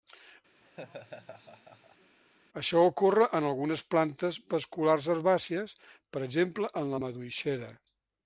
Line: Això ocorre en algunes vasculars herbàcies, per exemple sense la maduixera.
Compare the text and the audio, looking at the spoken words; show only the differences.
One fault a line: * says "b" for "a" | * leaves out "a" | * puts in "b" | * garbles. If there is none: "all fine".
* puts in "plantes"
* says "en" for "sense"